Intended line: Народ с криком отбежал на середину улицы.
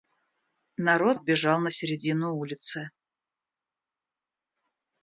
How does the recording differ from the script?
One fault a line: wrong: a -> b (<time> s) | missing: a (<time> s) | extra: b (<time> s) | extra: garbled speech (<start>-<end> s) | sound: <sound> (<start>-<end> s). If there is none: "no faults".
missing: с криком (1.2 s)